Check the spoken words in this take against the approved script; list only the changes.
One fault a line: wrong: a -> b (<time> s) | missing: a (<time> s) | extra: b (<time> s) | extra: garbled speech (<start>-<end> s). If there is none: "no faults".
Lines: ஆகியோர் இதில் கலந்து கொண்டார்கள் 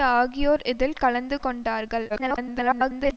extra: garbled speech (2.1-3.2 s)